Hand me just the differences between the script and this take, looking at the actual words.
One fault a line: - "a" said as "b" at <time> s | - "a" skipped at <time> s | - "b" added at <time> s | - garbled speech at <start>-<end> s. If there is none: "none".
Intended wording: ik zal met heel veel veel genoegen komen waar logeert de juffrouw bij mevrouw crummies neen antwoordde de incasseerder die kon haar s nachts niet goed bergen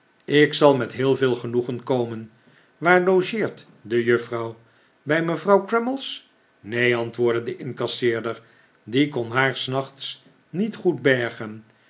- "veel" skipped at 1.4 s